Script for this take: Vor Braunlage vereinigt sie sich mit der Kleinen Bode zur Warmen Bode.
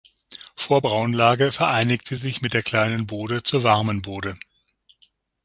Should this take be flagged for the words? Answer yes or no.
no